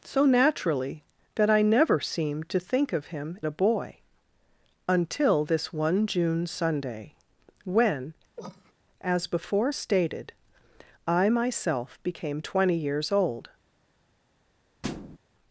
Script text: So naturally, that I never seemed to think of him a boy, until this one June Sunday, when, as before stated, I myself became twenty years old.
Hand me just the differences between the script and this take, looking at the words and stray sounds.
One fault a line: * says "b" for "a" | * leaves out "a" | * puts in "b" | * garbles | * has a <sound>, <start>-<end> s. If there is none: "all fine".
* has a cough, 8.4-8.7 s
* has a thud, 14.8-15.2 s